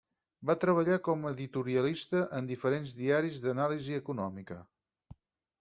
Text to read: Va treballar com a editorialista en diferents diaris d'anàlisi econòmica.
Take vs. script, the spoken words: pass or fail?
pass